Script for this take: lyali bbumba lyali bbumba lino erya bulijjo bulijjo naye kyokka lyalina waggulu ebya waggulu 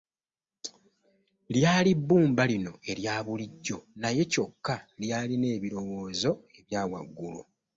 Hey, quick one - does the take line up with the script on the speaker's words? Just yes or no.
no